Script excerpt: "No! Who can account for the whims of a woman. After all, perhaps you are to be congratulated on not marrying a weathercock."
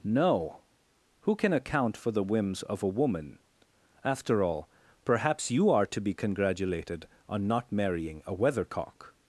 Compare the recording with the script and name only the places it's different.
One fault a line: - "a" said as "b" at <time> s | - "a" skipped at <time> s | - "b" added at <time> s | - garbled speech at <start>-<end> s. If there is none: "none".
none